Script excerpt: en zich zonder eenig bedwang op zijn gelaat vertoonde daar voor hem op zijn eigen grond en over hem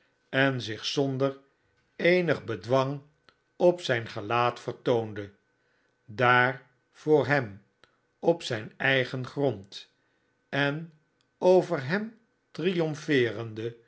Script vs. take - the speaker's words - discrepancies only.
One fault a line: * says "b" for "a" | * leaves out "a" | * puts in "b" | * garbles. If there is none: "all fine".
all fine